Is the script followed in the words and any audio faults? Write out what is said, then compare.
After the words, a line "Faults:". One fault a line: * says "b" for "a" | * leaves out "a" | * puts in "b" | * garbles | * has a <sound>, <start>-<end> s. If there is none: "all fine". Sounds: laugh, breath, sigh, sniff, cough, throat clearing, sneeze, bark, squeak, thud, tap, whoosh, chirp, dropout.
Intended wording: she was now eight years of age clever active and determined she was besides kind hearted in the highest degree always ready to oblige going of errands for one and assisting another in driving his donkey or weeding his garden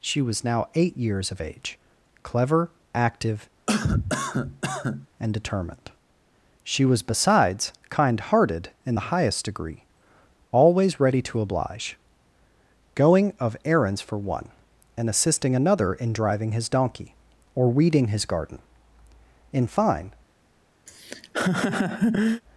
she was now eight years of age clever active and determined she was besides kind hearted in the highest degree always ready to oblige going of errands for one and assisting another in driving his donkey or weeding his garden in fine
Faults:
* has a cough, 3.7-5.1 s
* puts in "in fine"
* has a laugh, 20.9-22.4 s